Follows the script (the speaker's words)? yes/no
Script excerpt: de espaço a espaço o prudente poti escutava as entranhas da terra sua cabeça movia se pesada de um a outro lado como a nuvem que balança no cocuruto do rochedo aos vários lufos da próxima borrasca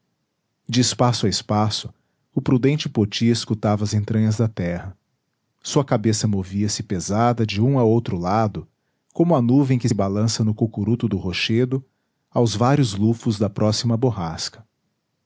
yes